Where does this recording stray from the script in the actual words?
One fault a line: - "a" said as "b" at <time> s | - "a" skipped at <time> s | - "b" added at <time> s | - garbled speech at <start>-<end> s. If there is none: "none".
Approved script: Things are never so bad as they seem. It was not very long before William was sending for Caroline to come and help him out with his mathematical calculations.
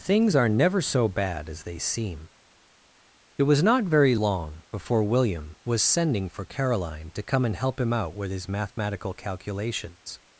none